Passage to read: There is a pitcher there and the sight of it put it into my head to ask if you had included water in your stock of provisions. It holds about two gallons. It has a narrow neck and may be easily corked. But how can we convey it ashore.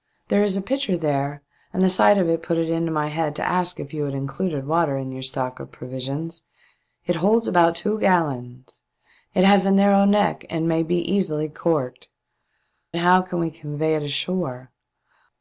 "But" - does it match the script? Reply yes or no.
no